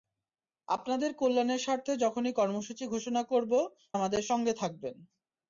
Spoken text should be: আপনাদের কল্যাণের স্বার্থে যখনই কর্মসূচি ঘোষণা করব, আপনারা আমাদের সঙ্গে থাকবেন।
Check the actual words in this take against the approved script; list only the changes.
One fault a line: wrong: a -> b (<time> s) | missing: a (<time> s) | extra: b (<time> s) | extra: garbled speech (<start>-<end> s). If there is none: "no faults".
missing: আপনারা (3.5 s)